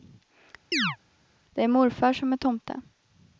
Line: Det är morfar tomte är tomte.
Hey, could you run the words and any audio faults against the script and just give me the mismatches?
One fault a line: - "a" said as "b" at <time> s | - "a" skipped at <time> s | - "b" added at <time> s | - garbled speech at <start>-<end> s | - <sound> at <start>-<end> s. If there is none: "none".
- chirp at 0.7-1.0 s
- "tomte" said as "som" at 2.1 s